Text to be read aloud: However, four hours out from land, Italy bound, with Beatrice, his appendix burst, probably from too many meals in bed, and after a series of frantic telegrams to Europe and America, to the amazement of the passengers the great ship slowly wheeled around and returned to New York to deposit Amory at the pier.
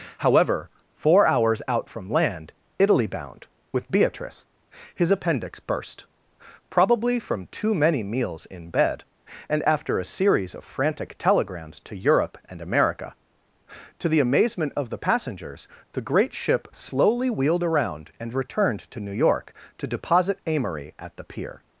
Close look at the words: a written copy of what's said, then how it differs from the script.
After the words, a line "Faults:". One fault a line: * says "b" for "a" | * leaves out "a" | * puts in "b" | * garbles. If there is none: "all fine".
However, four hours out from land, Italy bound, with Beatrice, his appendix burst, probably from too many meals in bed, and after a series of frantic telegrams to Europe and America, to the amazement of the passengers the great ship slowly wheeled around and returned to New York to deposit Amory at the pier.
Faults:
all fine